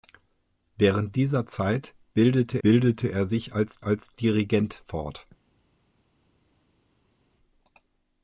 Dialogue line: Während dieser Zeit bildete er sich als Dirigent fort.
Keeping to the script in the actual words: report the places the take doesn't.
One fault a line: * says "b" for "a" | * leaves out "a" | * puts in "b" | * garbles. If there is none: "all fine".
* puts in "bildete"
* puts in "als"